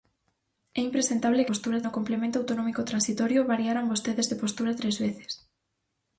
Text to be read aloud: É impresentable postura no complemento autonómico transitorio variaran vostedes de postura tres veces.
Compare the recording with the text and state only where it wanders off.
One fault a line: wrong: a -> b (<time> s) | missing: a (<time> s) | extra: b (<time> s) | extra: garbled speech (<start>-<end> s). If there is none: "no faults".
no faults